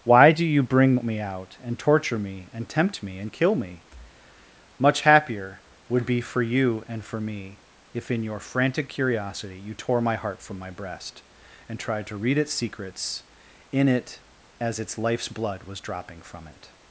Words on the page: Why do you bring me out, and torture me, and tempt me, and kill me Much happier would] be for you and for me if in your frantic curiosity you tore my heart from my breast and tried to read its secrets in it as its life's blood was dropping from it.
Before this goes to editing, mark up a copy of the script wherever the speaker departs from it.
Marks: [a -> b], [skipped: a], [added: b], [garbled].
Why do you bring me out, and torture me, and tempt me, and kill me Much happier would] be for you and for me if in your frantic curiosity you tore my heart from my breast and tried to read its secrets in it as its life's blood was dropping from it.